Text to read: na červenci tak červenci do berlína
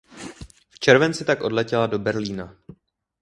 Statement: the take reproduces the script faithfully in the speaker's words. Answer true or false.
false